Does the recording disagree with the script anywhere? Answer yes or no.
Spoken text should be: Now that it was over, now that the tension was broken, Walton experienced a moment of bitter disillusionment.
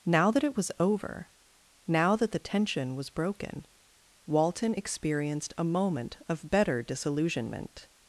yes